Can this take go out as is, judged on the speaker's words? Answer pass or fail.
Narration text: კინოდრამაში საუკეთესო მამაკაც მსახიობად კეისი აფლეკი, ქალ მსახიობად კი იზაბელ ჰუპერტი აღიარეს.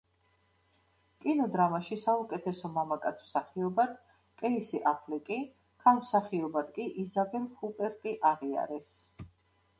pass